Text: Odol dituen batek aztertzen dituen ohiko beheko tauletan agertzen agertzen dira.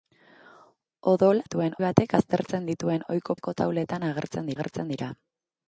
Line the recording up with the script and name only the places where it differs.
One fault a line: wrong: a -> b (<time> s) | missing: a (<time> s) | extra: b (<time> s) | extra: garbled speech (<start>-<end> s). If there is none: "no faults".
no faults